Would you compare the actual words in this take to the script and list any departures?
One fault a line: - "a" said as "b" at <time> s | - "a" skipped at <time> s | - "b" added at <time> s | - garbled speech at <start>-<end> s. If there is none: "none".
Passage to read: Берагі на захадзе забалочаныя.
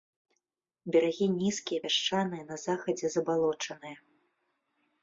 - "нізкія пясчаныя" added at 1.4 s